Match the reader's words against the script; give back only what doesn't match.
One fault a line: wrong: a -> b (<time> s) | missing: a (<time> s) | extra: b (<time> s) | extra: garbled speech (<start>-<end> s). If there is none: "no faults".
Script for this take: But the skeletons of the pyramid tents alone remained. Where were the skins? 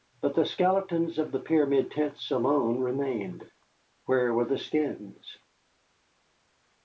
no faults